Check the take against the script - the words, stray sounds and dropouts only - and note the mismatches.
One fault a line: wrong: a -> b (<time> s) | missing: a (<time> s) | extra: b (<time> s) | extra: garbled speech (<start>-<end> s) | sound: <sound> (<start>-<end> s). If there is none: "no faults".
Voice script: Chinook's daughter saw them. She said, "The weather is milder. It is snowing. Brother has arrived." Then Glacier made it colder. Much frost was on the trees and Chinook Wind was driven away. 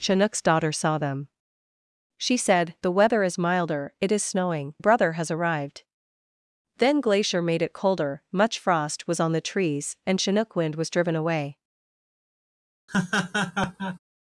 sound: laugh (12.9-14.0 s)